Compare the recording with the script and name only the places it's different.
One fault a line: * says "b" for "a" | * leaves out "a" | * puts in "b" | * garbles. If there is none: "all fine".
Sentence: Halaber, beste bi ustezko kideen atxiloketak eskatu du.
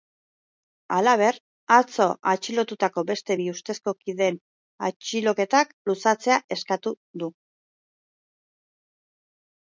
* puts in "atzo atxilotutako"
* puts in "luzatzea"